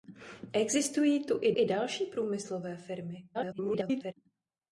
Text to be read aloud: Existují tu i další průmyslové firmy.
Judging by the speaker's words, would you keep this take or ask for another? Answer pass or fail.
fail